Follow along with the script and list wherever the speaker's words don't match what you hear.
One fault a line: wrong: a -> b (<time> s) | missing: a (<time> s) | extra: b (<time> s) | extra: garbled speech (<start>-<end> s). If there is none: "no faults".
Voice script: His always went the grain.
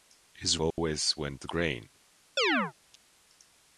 no faults